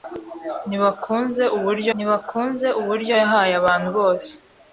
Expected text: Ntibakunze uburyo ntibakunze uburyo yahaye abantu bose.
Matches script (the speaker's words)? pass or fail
pass